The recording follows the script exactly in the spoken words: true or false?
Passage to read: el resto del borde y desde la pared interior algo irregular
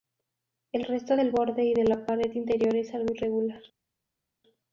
false